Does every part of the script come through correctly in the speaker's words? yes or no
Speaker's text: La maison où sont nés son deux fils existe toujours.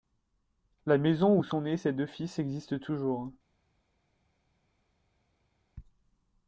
no